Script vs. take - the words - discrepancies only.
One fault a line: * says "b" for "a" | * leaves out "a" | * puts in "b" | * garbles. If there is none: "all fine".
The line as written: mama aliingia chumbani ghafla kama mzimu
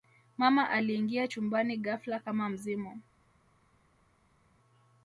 all fine